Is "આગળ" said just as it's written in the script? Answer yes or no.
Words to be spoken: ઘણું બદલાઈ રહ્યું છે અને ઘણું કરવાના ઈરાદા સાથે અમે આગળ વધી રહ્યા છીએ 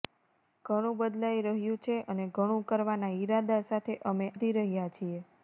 no